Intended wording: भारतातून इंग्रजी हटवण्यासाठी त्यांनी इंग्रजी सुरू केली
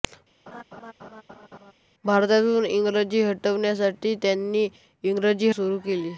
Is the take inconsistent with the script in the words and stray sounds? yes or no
yes